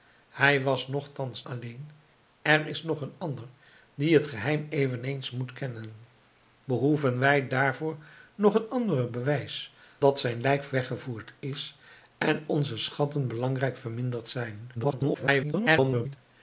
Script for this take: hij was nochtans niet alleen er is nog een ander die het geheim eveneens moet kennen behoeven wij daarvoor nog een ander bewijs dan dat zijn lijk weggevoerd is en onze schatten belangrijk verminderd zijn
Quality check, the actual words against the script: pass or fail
fail